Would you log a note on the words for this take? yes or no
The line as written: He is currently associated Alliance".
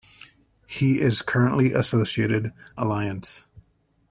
no